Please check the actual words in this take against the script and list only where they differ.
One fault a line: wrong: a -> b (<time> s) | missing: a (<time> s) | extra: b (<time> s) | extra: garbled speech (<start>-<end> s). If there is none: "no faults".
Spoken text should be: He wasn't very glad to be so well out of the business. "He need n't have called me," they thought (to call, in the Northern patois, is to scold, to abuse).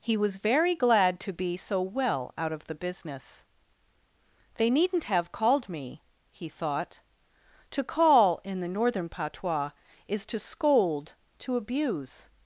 wrong: wasn't -> was (0.2 s)
wrong: He -> They (4.5 s)
wrong: they -> he (6.3 s)